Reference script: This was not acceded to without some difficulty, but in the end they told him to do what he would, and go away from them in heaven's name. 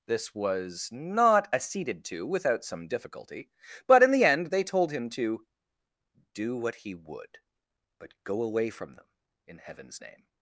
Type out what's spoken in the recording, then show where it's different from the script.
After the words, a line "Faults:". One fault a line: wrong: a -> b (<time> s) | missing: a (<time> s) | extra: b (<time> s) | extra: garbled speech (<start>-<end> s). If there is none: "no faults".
This was not acceded to without some difficulty, but in the end they told him to do what he would, but go away from them in heaven's name.
Faults:
wrong: and -> but (8.0 s)